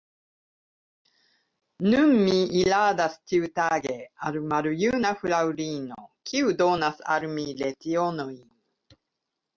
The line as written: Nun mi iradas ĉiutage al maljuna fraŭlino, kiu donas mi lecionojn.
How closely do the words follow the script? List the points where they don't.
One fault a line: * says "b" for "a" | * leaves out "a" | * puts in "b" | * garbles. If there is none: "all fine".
* puts in "al"